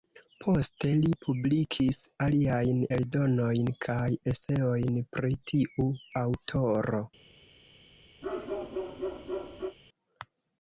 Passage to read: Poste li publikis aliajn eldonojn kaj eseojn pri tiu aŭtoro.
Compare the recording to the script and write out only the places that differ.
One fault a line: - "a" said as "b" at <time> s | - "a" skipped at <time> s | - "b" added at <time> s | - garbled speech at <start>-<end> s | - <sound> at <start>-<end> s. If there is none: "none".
- bark at 8.2-9.8 s